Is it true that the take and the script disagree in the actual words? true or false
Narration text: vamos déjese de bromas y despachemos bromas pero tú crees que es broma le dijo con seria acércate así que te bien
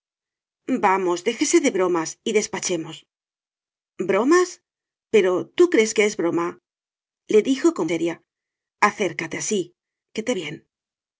false